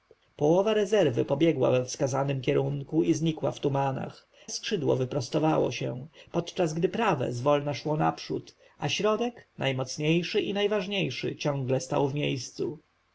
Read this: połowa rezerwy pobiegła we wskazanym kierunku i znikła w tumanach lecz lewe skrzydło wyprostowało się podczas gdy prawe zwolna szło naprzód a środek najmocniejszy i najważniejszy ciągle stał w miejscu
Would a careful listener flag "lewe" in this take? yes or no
yes